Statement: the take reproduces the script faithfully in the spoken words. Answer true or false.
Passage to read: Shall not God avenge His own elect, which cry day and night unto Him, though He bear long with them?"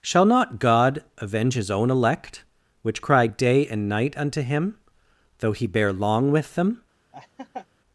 true